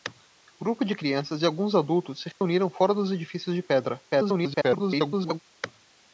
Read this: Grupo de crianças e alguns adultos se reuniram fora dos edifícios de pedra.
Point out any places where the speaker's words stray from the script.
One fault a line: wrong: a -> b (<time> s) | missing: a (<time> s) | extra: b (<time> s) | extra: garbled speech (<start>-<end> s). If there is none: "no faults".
extra: garbled speech (4.1-5.4 s)